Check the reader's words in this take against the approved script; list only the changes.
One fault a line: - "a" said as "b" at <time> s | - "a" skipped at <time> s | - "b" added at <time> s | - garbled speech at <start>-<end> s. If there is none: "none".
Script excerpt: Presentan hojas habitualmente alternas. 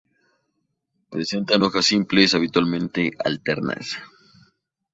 - "simples" added at 1.9 s